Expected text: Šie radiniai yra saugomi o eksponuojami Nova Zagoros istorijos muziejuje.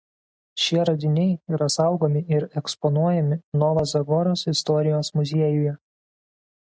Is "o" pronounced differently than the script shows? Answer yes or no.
yes